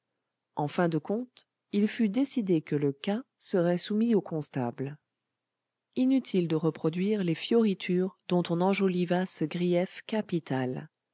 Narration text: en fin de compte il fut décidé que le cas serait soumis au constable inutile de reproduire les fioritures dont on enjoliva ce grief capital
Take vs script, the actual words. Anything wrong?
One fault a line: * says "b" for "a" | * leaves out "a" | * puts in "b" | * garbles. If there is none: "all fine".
all fine